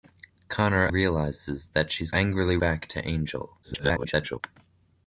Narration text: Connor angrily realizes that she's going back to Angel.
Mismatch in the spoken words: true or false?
true